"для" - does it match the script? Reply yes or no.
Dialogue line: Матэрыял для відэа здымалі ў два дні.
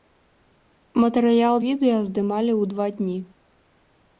no